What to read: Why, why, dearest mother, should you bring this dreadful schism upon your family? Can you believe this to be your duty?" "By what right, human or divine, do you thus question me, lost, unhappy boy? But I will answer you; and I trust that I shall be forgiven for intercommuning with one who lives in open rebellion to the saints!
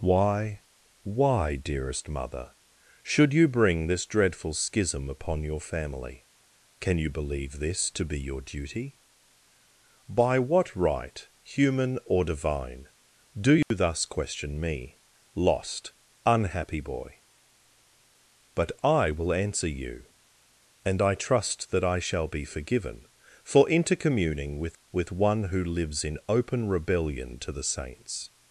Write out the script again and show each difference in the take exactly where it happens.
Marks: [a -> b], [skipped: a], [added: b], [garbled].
Why, why, dearest mother, should you bring this dreadful schism upon your family? Can you believe this to be your duty?" "By what right, human or divine, do you thus question me, lost, unhappy boy? But I will answer you; and I trust that I shall be forgiven for intercommuning with [added: with] one who lives in open rebellion to the saints!